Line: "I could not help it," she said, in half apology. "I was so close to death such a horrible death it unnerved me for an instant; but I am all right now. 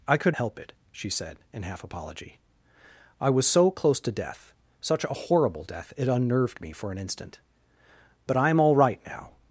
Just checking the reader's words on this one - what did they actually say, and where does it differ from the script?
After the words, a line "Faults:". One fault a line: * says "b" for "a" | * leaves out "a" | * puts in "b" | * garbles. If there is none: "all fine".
"I could help it," she said, in half apology. "I was so close to death such a horrible death it unnerved me for an instant; but I am all right now.
Faults:
* leaves out "not"